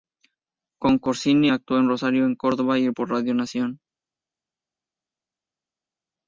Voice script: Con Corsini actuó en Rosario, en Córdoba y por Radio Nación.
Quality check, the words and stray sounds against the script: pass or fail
pass